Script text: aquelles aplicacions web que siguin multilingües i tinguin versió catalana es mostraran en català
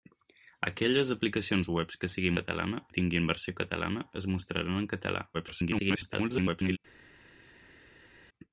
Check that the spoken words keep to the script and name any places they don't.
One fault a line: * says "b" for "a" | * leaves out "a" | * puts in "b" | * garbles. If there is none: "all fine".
* says "catalana" for "multilingües"
* garbles